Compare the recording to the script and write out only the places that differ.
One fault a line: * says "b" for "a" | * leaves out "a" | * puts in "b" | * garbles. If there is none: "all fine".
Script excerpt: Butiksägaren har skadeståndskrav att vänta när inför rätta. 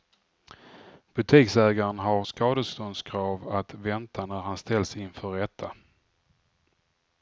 * puts in "han ställs"